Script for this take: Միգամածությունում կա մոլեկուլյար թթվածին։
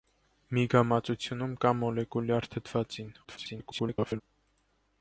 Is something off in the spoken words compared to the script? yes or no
yes